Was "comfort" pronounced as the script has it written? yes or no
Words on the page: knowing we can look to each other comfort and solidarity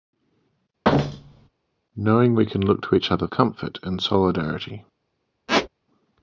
yes